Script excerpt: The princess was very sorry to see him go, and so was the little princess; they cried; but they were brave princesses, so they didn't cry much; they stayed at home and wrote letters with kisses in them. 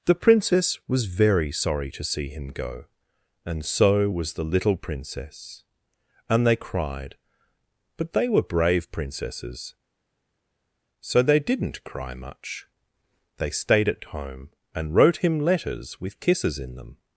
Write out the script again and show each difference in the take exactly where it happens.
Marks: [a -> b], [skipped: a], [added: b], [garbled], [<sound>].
The princess was very sorry to see him go, and so was the little princess; [added: and] they cried; but they were brave princesses, so they didn't cry much; they stayed at home and wrote [added: him] letters with kisses in them.